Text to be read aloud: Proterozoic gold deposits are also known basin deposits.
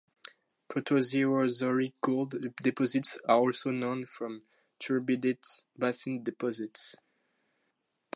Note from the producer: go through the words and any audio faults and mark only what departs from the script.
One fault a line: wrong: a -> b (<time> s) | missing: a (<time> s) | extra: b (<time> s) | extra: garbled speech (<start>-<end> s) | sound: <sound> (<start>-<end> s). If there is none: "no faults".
extra: from turbidite (4.1 s)